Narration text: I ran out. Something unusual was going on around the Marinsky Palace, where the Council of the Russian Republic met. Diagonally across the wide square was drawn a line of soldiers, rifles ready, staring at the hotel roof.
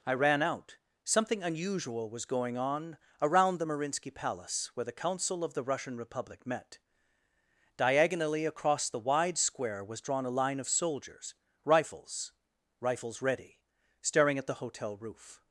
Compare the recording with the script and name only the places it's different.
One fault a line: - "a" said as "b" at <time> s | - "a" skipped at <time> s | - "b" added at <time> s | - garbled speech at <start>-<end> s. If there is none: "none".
- "rifles" added at 12.8 s